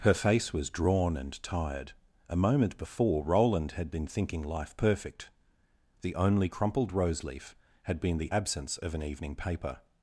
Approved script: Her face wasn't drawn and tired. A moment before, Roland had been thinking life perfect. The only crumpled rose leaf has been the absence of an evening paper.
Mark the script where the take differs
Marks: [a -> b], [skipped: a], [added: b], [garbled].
Her face [wasn't -> was] drawn and tired. A moment before, Roland had been thinking life perfect. The only crumpled rose leaf [has -> had] been the absence of an evening paper.